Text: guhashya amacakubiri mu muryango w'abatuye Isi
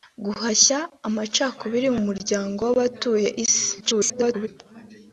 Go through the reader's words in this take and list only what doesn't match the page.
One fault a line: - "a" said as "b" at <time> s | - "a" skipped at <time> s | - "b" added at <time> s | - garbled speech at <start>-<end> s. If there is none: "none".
- garbled speech at 3.8-4.5 s